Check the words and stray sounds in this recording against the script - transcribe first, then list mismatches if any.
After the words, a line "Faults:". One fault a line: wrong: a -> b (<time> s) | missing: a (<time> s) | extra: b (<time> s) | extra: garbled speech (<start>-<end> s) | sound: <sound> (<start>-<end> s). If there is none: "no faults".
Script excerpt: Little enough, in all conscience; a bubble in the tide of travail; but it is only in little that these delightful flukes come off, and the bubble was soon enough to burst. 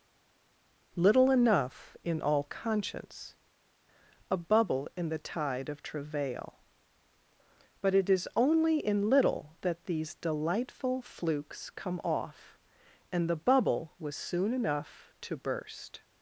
Little enough, in all conscience; a bubble in the tide of travail; but it is only in little that these delightful flukes come off, and the bubble was soon enough to burst.
Faults:
no faults